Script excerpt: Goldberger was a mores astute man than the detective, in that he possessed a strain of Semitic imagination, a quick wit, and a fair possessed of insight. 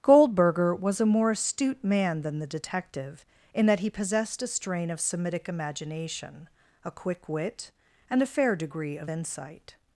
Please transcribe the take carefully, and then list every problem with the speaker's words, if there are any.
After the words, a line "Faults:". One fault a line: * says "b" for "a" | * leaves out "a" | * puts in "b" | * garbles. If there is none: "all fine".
Goldberger was a more astute man than the detective, in that he possessed a strain of Semitic imagination, a quick wit, and a fair degree of insight.
Faults:
* says "more" for "mores"
* says "degree" for "possessed"